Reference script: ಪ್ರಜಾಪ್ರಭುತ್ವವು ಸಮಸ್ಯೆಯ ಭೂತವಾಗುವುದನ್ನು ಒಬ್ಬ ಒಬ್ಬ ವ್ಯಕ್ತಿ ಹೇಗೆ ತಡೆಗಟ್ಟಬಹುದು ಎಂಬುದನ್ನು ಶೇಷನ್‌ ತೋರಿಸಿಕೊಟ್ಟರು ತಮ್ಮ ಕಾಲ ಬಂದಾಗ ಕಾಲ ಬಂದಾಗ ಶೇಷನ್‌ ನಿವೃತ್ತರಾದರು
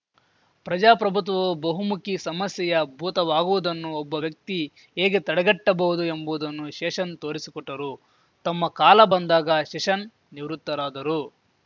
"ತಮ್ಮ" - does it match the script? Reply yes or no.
yes